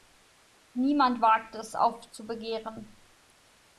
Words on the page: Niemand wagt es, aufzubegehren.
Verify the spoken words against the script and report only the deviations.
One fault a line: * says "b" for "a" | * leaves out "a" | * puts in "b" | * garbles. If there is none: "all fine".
all fine